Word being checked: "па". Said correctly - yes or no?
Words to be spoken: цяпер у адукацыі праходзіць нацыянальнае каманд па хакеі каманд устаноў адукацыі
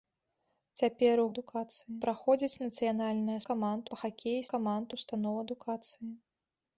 yes